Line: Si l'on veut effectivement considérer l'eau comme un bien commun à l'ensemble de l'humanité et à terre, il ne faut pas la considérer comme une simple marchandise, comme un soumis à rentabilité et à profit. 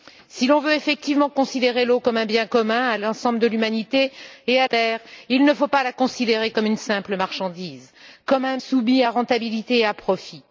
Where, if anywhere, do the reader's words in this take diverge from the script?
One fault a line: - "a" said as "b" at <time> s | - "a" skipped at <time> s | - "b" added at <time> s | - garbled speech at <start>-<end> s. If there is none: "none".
none